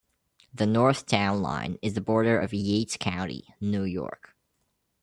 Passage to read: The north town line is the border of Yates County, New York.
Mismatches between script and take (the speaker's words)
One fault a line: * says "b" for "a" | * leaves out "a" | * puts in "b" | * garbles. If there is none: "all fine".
all fine